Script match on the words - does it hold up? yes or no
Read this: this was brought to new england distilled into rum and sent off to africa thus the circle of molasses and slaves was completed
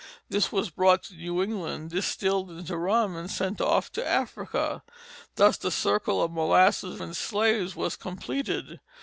yes